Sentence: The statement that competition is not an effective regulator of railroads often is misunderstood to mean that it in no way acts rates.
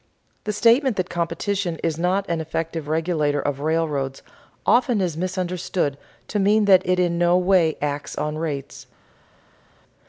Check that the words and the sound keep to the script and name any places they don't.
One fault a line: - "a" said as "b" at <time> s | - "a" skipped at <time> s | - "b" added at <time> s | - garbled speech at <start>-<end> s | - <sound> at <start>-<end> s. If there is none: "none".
- "on" added at 8.2 s